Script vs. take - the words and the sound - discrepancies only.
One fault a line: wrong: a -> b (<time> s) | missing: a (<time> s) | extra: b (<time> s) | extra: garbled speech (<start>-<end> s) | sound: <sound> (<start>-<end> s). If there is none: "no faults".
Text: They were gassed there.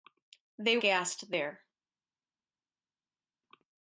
missing: were (0.8 s)